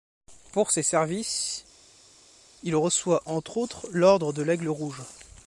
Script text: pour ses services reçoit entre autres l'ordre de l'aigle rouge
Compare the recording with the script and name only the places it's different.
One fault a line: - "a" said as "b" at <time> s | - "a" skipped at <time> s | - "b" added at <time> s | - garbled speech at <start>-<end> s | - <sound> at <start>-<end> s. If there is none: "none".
- "il" added at 2.6 s